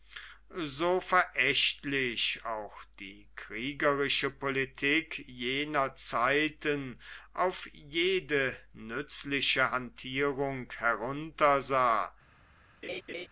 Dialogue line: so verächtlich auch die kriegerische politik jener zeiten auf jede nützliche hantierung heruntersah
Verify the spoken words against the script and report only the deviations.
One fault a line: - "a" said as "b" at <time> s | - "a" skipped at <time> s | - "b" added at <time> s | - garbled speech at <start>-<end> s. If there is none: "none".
none